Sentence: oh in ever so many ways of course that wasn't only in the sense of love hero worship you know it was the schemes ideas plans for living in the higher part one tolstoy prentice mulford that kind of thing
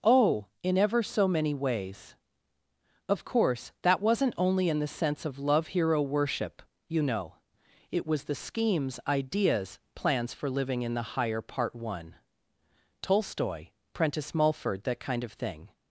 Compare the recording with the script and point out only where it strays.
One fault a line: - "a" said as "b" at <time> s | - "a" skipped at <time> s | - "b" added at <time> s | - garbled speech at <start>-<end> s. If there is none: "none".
none